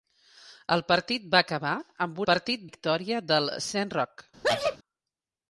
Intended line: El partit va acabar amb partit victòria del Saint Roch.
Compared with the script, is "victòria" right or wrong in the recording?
right